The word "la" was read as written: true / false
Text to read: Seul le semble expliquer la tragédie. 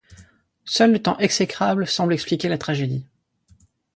true